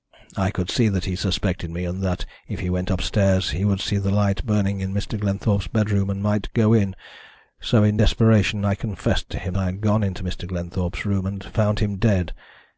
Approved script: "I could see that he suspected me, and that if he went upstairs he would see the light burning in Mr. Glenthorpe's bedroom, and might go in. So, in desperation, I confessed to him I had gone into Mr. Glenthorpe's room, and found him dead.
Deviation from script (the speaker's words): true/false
false